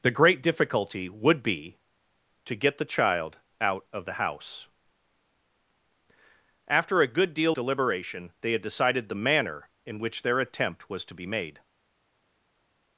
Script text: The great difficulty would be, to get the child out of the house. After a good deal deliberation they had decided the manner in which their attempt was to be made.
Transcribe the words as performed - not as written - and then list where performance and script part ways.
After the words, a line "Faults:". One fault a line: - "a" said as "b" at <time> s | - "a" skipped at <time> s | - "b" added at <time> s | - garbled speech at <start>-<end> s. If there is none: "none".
The great difficulty would be, to get the child out of the house. After a good deal deliberation they had decided the manner in which their attempt was to be made.
Faults:
none